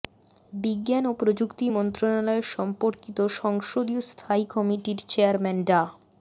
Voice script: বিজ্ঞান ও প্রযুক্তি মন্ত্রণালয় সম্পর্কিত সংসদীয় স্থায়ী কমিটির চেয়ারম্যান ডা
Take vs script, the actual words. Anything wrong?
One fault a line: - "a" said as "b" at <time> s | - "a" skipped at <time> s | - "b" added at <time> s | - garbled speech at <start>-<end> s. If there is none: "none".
none